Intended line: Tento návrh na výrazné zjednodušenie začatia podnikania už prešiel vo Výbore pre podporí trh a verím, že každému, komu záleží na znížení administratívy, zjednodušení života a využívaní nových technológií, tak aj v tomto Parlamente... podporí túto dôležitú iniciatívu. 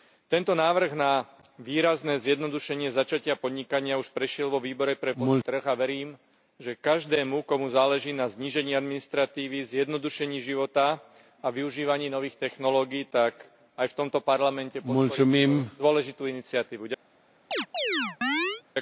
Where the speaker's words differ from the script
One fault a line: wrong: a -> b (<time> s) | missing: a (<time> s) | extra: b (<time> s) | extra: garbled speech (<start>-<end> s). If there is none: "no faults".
no faults